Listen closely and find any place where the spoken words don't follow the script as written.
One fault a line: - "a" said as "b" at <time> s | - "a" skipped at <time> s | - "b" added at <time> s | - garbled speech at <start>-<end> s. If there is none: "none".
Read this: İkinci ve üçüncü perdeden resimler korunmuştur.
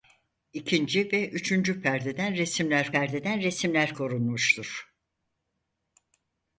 - "perdeden resimler" added at 2.9 s